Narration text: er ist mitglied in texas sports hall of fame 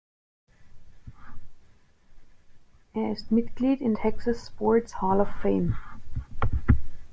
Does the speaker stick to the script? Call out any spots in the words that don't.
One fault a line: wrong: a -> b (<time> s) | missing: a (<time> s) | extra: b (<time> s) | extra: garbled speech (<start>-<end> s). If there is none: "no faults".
no faults